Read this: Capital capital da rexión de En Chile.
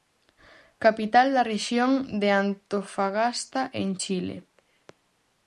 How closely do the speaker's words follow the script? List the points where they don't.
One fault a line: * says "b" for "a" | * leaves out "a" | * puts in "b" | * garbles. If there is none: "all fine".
* leaves out "capital"
* puts in "Antofagasta"